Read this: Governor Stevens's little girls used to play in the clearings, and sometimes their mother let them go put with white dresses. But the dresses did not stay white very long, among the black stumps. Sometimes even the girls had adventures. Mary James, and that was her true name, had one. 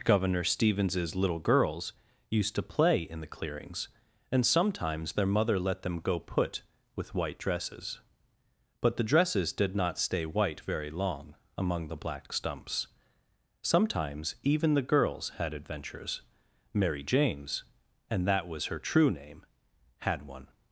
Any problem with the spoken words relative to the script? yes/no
no